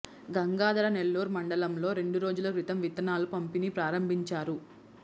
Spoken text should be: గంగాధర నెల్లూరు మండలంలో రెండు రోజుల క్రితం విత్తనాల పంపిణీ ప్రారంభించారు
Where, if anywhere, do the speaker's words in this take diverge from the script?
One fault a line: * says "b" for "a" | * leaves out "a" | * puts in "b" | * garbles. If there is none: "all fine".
all fine